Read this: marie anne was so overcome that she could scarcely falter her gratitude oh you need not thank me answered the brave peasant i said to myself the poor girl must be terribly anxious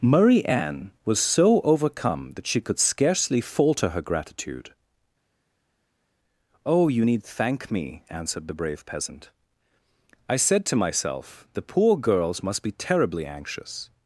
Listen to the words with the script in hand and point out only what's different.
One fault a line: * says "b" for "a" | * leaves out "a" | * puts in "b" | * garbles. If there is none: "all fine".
* leaves out "not"
* says "girls" for "girl"